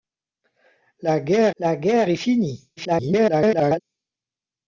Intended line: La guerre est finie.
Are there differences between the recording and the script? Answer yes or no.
yes